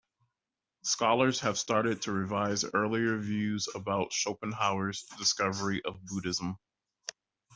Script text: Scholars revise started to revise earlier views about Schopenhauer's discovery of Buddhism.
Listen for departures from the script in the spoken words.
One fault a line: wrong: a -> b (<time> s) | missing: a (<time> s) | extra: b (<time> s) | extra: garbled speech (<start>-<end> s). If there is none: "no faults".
wrong: revise -> have (1.4 s)